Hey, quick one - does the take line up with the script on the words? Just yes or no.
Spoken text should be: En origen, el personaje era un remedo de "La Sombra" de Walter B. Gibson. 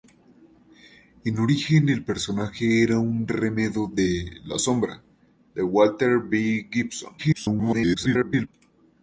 no